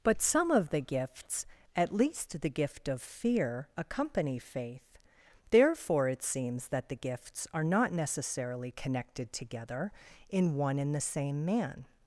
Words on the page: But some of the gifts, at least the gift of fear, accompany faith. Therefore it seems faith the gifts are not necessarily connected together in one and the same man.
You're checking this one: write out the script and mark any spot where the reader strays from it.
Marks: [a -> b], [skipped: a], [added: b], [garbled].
But some of the gifts, at least the gift of fear, accompany faith. Therefore it seems [faith -> that] the gifts are not necessarily connected together in one and the same man.